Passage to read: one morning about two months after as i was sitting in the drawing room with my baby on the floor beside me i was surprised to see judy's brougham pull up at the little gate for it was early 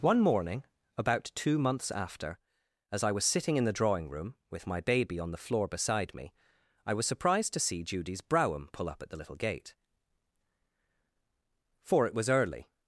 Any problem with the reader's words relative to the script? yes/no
no